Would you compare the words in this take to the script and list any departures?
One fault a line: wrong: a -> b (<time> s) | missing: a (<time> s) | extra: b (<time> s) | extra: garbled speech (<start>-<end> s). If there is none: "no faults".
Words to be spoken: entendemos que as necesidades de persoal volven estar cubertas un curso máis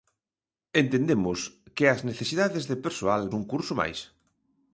missing: volven estar cubertas (3.2 s)